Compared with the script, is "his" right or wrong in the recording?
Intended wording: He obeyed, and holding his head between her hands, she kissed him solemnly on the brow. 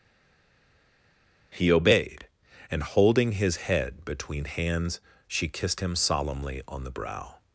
right